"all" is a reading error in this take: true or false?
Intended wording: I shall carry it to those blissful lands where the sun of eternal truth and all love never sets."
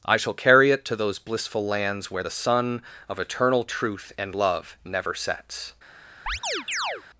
true